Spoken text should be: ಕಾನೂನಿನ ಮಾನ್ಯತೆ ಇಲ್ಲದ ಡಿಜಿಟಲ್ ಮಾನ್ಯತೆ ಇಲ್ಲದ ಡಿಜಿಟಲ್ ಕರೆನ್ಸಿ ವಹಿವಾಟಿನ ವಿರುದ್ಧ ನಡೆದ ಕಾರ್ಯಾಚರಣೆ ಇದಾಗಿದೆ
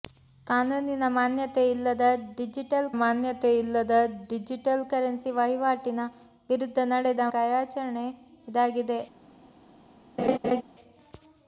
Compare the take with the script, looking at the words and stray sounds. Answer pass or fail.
fail